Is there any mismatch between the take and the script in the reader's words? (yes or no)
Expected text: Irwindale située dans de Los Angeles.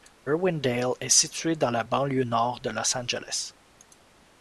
yes